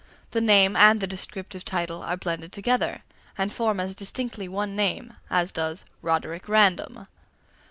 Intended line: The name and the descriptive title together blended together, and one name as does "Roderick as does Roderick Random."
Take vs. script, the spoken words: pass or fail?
fail